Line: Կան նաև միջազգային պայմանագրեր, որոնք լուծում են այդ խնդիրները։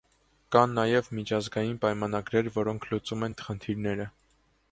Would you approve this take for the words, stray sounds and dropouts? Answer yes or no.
no